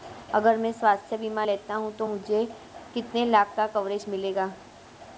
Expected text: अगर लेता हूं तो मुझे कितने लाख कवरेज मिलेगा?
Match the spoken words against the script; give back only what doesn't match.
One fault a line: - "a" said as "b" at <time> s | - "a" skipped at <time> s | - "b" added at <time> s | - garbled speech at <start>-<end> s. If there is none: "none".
- "मैं स्वास्थ्य बीमा" added at 0.6 s
- "का" added at 3.6 s